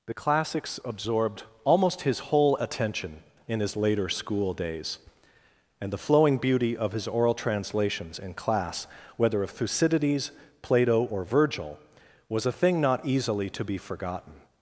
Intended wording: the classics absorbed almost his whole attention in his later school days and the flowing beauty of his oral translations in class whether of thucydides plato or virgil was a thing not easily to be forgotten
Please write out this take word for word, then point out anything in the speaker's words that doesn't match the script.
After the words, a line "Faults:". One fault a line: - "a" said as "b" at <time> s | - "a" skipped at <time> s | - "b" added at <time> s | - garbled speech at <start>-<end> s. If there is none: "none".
the classics absorbed almost his whole attention in his later school days and the flowing beauty of his oral translations in class whether of thucydides plato or virgil was a thing not easily to be forgotten
Faults:
none